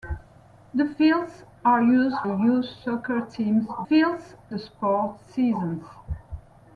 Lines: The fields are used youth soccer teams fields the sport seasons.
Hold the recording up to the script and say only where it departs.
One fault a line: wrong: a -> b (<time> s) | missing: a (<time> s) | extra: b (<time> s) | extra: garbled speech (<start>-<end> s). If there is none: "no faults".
no faults